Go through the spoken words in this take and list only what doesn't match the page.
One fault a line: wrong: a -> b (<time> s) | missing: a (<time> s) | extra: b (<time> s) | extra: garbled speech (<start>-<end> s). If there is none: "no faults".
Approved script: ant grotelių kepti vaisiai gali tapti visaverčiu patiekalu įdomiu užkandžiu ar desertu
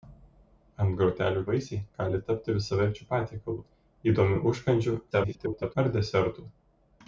missing: kepti (1.4 s)
extra: garbled speech (5.1-5.8 s)